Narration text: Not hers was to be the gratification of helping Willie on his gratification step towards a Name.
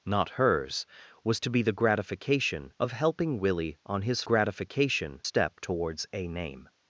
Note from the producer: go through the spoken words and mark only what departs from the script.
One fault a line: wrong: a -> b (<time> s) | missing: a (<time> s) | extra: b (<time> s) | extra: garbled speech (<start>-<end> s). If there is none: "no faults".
no faults